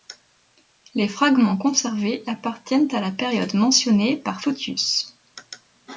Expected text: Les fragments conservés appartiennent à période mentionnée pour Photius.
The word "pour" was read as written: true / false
false